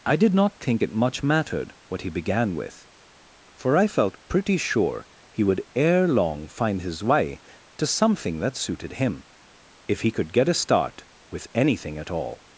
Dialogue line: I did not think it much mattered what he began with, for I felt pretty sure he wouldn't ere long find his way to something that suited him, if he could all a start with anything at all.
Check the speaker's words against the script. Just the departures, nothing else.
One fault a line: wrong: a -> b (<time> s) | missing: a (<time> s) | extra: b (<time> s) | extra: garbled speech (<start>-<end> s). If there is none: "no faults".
wrong: wouldn't -> would (5.4 s)
wrong: all -> get (10.3 s)